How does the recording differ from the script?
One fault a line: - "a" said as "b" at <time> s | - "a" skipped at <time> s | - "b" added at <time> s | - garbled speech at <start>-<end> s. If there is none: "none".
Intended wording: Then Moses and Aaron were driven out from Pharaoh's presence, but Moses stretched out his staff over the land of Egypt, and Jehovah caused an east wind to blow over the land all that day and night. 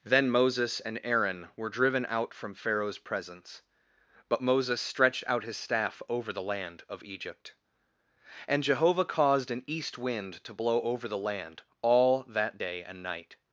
none